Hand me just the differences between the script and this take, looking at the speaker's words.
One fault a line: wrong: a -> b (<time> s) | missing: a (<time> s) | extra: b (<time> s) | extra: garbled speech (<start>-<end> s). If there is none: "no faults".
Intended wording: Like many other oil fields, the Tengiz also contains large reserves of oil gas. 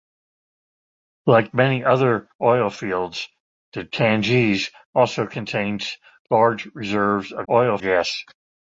no faults